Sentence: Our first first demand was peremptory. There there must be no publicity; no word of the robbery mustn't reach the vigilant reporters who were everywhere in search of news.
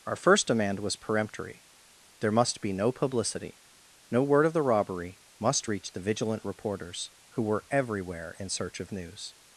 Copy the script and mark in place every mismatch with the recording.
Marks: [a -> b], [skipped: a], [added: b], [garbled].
Our first [skipped: first] demand was peremptory. There [skipped: there] must be no publicity; no word of the robbery [mustn't -> must] reach the vigilant reporters who were everywhere in search of news.